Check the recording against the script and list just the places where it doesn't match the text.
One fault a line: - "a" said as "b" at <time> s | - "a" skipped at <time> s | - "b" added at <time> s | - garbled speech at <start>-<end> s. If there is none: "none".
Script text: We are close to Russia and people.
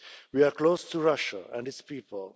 - "its" added at 1.7 s